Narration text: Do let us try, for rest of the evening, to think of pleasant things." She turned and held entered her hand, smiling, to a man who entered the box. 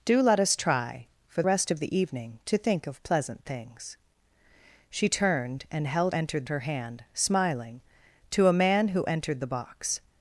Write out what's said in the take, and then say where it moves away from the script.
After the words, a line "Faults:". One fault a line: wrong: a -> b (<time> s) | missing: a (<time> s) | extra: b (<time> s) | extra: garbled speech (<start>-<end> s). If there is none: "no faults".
Do let us try, for rest of the evening, to think of pleasant things." She turned and held entered her hand, smiling, to a man who entered the box.
Faults:
no faults